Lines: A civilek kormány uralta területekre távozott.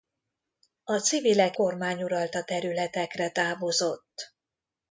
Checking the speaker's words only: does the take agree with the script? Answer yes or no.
yes